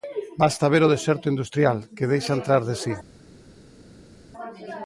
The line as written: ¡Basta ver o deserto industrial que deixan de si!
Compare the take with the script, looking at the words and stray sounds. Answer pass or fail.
fail